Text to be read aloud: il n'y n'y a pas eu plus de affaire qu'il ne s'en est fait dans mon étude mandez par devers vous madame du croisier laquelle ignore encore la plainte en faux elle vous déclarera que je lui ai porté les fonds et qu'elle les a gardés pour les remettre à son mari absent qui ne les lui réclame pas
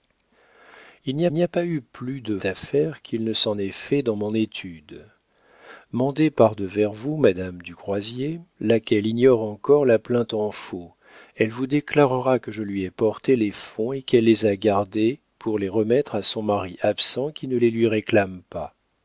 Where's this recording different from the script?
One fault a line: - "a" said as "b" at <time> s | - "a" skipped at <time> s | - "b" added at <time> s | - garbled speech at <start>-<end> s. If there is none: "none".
none